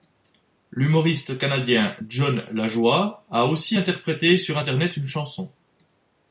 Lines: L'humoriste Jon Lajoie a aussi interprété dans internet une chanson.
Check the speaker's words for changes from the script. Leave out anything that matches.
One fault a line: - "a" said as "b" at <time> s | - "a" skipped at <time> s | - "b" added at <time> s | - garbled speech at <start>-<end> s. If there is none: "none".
- "canadien" added at 1.4 s
- "dans" said as "sur" at 4.4 s